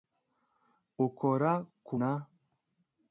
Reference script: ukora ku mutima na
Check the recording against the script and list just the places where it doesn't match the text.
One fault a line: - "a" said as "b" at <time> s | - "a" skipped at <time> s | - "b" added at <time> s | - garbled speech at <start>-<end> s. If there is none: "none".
- "mutima" skipped at 1.9 s